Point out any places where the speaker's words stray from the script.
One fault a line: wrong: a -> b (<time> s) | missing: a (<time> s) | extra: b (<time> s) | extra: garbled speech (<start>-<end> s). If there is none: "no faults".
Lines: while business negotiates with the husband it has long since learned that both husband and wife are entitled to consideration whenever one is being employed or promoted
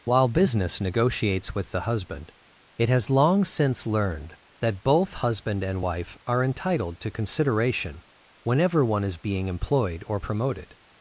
no faults